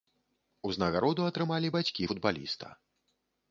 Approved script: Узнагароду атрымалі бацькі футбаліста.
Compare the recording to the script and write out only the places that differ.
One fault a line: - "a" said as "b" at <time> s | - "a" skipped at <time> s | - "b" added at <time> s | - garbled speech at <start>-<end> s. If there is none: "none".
none